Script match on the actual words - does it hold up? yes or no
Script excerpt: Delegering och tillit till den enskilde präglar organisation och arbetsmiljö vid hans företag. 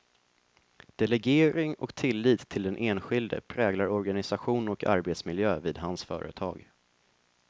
yes